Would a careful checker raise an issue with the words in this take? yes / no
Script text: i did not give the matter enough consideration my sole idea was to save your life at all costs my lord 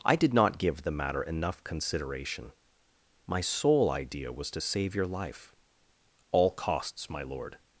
yes